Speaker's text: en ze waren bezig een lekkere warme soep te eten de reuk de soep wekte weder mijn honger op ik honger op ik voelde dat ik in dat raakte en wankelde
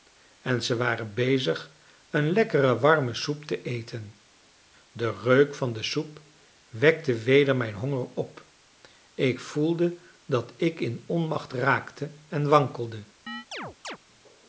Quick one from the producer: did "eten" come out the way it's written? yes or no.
yes